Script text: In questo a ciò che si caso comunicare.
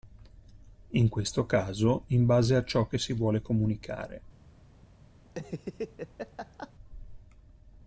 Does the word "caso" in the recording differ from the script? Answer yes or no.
yes